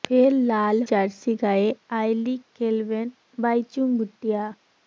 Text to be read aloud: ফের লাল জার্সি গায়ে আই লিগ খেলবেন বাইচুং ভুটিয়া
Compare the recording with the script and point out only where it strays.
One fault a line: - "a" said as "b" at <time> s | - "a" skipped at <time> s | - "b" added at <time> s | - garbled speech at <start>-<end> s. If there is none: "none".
none